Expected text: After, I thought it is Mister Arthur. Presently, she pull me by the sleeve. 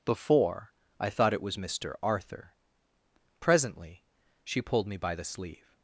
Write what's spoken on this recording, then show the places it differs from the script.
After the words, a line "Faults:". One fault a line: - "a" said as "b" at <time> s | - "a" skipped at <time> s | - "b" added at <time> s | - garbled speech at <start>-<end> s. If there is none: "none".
Before, I thought it was Mister Arthur. Presently, she pulled me by the sleeve.
Faults:
- "After" said as "Before" at 0.0 s
- "is" said as "was" at 1.4 s
- "pull" said as "pulled" at 4.6 s